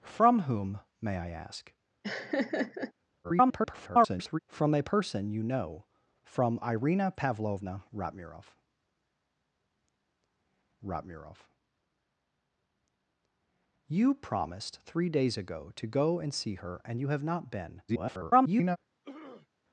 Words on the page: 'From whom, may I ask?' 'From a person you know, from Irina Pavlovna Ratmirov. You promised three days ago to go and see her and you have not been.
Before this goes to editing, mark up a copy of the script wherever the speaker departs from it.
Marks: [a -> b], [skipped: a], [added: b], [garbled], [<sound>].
'From whom, may I ask?' [laugh] [garbled] 'From a person you know, from Irina Pavlovna Ratmirov. [added: Ratmirov] You promised three days ago to go and see her and you have not been. [garbled] [throat clearing]